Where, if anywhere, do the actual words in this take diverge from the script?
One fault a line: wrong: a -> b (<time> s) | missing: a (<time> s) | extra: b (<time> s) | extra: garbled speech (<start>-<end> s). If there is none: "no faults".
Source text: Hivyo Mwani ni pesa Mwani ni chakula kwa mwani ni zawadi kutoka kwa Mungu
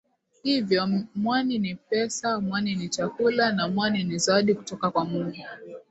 wrong: kwa -> na (3.5 s)